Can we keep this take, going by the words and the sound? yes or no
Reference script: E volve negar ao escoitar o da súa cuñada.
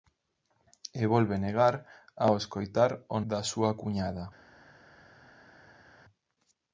yes